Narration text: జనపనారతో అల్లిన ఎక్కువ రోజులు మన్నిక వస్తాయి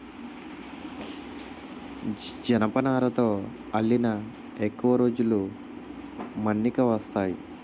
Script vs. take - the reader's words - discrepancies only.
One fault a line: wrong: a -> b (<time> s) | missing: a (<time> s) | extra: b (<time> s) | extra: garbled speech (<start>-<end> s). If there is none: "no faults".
no faults